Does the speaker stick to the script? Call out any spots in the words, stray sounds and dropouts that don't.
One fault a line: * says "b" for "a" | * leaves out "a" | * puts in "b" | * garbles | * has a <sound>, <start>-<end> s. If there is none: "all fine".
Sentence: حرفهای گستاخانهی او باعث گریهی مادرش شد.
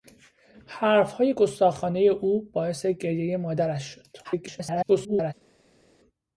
* garbles